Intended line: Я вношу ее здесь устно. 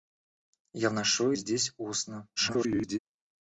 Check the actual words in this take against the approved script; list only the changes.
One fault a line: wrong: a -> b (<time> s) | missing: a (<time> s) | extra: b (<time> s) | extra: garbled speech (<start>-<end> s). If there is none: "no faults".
missing: ее (1.3 s)
extra: garbled speech (2.4-3.0 s)